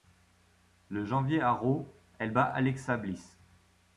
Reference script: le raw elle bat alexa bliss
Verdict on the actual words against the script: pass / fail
fail